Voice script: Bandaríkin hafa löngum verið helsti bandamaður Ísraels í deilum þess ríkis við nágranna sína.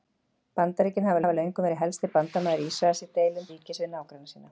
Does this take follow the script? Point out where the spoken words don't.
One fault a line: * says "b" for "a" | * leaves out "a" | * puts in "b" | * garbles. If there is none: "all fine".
* puts in "hafa"
* leaves out "þess"